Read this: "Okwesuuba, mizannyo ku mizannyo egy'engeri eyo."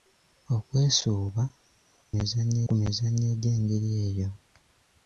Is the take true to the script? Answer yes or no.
yes